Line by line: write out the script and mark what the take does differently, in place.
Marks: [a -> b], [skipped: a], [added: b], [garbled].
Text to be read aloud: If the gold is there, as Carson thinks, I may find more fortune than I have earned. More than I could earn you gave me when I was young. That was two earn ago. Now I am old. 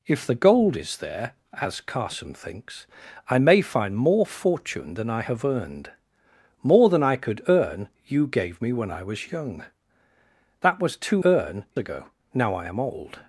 If the gold is there, as Carson thinks, I may find more fortune than I have earned. More than I could earn you gave me when I was young. That was two earn ago. Now I am old.